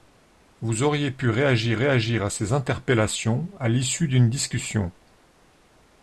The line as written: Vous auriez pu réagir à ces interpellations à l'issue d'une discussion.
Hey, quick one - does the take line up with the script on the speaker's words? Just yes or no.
no